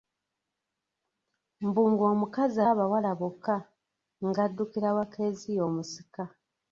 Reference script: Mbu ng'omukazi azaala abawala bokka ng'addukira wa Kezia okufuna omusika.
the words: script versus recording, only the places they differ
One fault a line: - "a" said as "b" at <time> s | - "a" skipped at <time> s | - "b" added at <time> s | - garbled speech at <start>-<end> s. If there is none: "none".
- "azaala" skipped at 2.6 s
- "okufuna" skipped at 5.6 s